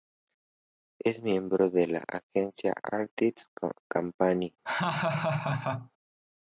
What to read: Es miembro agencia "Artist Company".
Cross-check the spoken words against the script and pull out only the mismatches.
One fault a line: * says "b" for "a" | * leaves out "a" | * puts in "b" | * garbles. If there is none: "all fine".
* puts in "de la"